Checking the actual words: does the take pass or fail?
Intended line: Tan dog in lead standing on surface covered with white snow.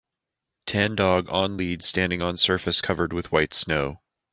fail